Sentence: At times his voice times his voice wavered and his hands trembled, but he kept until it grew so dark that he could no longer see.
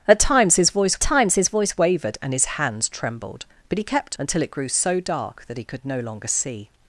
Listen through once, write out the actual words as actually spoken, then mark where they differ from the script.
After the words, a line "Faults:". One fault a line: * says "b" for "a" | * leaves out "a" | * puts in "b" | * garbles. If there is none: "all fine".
At times his voice times his voice wavered and his hands trembled, but he kept until it grew so dark that he could no longer see.
Faults:
all fine